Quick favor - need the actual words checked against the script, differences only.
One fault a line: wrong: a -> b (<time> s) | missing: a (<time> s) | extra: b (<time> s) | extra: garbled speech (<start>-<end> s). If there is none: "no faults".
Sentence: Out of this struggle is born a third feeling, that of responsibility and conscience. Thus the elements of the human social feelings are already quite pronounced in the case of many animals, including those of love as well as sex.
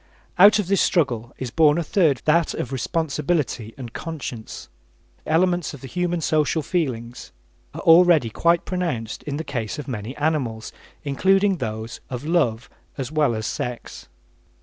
missing: feeling (2.2 s)
missing: Thus the (4.7 s)